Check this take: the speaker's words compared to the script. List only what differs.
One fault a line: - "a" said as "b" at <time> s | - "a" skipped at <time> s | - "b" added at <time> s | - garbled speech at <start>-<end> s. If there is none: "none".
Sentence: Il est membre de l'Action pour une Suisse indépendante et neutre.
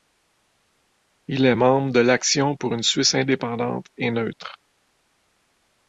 none